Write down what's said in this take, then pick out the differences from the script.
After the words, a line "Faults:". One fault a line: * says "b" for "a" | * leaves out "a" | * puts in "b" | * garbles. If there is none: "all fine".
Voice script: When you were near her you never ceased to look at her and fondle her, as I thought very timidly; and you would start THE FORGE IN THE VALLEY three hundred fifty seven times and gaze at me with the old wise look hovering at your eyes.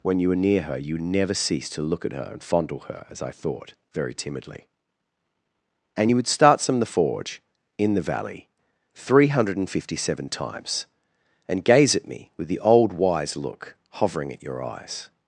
When you were near her you never ceased to look at her and fondle her, as I thought very timidly; and you would start some THE FORGE IN THE VALLEY three hundred fifty seven times and gaze at me with the old wise look hovering at your eyes.
Faults:
* puts in "some"